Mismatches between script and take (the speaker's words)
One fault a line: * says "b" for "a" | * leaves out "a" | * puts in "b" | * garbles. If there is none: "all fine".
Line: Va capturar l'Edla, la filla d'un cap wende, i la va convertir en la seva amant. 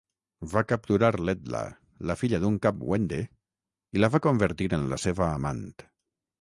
all fine